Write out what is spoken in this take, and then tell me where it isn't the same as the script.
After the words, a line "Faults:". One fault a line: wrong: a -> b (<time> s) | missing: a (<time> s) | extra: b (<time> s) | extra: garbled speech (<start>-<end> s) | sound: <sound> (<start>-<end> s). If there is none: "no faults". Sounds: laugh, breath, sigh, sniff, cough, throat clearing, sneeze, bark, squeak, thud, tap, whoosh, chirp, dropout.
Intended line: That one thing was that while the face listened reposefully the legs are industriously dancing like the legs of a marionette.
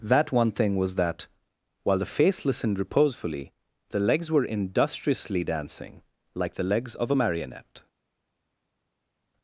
That one thing was that while the face listened reposefully the legs were industriously dancing like the legs of a marionette.
Faults:
wrong: are -> were (4.3 s)